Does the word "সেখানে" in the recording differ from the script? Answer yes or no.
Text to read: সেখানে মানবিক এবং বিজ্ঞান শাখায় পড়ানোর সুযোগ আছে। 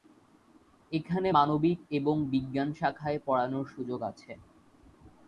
yes